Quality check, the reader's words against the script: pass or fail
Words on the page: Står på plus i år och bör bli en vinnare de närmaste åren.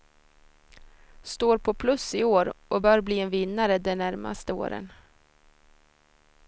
pass